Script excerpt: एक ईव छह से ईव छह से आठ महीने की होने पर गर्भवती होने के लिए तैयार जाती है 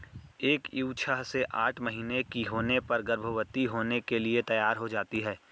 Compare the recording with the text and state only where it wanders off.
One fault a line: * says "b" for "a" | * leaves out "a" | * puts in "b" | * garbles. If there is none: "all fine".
* leaves out "ईव छह से"
* puts in "हो"